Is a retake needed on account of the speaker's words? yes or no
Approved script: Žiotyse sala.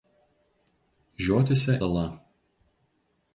no